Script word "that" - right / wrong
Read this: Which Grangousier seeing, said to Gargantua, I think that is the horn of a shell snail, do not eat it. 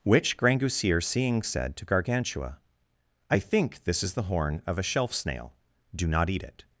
wrong